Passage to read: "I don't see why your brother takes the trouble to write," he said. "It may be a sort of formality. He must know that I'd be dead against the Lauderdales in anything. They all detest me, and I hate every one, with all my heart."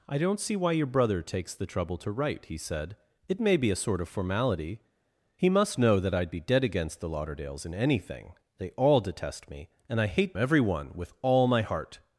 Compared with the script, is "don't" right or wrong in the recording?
right